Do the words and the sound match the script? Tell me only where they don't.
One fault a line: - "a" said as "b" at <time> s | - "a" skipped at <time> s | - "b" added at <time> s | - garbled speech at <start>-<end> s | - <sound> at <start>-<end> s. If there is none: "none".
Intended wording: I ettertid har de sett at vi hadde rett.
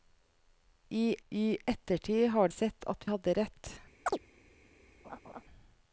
- "I" added at 1.3 s
- "de" skipped at 2.5 s
- "vi" skipped at 3.1 s
- chirp at 4.1-4.2 s
- laugh at 5.0-5.4 s